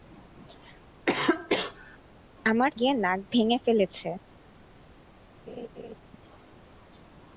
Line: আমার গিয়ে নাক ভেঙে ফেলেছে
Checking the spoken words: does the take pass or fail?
pass